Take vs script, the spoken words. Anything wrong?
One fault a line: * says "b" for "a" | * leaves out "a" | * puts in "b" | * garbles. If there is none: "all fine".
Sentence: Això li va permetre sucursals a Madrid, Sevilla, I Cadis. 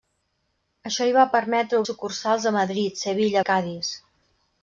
all fine